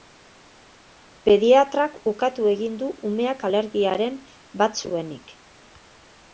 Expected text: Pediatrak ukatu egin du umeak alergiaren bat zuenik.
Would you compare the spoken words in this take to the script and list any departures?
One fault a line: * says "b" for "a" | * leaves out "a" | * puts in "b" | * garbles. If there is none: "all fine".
all fine